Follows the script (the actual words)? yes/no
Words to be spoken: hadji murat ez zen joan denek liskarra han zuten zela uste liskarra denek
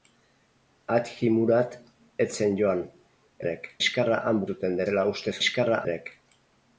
yes